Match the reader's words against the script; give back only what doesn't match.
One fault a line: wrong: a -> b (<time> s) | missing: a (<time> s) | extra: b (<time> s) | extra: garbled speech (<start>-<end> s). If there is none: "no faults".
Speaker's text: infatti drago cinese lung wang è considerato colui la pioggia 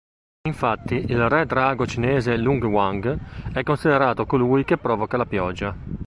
extra: il re (0.9 s)
extra: che provoca (4.6 s)